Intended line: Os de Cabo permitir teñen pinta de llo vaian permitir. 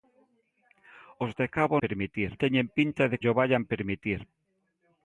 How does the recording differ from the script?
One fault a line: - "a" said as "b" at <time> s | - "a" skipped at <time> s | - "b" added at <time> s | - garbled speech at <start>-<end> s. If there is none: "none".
none